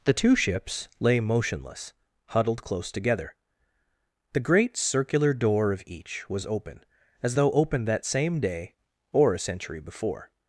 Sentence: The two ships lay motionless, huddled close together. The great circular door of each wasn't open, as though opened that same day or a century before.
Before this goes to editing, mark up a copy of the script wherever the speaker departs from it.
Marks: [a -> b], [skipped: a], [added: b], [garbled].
The two ships lay motionless, huddled close together. The great circular door of each [wasn't -> was] open, as though opened that same day or a century before.